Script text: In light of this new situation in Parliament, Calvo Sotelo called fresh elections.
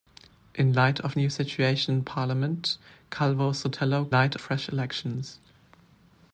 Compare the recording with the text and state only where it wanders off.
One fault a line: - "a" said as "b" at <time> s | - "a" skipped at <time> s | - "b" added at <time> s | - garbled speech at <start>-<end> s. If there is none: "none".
- "this" skipped at 1.1 s
- "called" said as "light" at 4.1 s